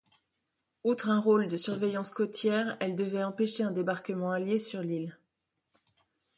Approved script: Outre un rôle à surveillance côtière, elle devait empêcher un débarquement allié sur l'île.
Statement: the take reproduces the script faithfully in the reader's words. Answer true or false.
false